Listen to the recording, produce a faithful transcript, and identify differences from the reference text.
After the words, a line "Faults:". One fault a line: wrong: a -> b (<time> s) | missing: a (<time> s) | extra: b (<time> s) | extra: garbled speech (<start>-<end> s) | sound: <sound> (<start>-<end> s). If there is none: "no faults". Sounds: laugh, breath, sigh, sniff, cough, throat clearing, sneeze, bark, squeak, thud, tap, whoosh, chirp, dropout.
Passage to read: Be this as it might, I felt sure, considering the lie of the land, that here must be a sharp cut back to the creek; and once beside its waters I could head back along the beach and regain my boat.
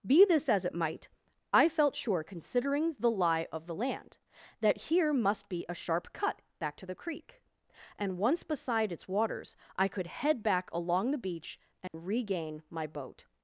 Be this as it might, I felt sure, considering the lie of the land, that here must be a sharp cut back to the creek; and once beside its waters I could head back along the beach and regain my boat.
Faults:
sound: dropout (11.9-11.9 s)